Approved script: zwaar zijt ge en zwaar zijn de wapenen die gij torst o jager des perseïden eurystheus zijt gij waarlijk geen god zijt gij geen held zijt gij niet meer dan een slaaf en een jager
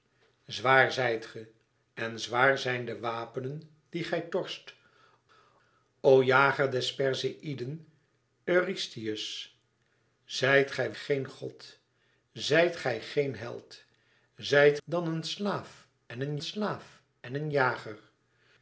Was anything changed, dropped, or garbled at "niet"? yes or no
yes